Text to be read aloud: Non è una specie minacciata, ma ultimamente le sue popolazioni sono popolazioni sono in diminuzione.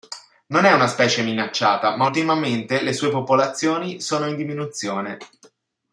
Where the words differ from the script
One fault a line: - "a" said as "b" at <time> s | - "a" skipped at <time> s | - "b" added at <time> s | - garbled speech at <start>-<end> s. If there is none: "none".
- "popolazioni sono" skipped at 4.3 s